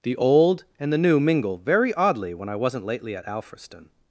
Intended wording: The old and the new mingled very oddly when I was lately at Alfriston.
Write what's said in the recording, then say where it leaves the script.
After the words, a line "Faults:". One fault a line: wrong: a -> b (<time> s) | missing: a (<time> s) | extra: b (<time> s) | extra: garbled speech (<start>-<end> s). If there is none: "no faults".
The old and the new mingle very oddly when I wasn't lately at Alfriston.
Faults:
wrong: mingled -> mingle (1.2 s)
wrong: was -> wasn't (2.5 s)